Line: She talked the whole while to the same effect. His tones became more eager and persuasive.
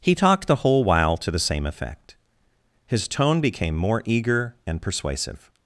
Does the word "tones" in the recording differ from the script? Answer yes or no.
yes